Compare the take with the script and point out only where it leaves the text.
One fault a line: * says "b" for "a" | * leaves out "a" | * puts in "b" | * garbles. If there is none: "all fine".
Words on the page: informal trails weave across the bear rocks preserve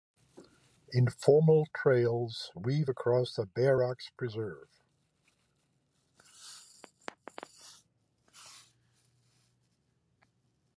all fine